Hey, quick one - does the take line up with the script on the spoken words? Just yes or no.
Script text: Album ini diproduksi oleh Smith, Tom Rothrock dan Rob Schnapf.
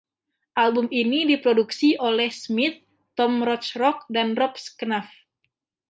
yes